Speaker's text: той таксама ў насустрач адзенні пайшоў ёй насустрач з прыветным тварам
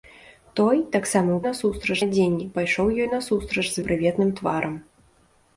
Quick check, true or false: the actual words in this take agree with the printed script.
true